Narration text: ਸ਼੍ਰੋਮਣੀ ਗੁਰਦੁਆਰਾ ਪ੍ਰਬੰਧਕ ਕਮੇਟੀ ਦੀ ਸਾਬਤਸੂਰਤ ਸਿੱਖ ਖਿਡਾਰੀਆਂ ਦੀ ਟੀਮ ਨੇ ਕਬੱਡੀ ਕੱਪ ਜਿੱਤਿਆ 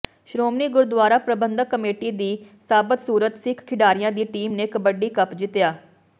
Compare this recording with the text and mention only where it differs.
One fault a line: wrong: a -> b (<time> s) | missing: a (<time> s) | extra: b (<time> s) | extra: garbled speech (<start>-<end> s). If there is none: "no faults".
no faults